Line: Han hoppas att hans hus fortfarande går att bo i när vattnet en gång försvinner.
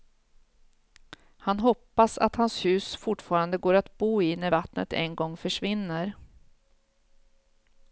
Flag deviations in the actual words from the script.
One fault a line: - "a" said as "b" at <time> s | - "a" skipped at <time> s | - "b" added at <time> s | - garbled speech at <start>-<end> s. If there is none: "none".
none